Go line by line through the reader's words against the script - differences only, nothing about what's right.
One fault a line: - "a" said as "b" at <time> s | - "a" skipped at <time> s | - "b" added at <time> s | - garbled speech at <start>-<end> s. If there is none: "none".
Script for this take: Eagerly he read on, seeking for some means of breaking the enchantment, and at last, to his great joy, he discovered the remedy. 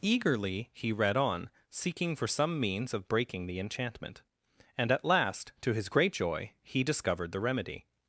none